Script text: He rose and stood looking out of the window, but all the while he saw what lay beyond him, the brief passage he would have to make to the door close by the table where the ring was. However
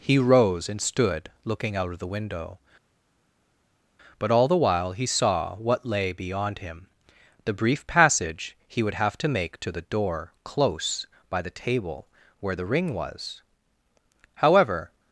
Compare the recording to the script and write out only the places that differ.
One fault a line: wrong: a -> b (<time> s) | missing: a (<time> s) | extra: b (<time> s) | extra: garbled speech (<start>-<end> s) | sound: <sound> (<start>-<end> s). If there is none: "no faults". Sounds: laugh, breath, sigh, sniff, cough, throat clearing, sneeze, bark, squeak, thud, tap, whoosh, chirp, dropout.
no faults